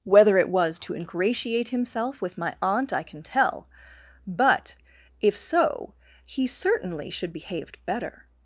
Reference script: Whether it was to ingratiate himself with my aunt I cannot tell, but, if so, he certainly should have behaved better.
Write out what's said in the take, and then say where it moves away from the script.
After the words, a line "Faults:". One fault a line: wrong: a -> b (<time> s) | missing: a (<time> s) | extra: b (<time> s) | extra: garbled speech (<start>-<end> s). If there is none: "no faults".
Whether it was to ingratiate himself with my aunt I can tell, but, if so, he certainly should behaved better.
Faults:
wrong: cannot -> can (3.0 s)
missing: have (7.3 s)